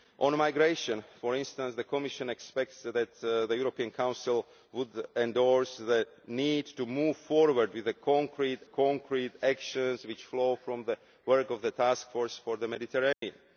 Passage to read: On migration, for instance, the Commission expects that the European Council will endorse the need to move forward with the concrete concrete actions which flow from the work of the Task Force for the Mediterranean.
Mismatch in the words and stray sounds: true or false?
true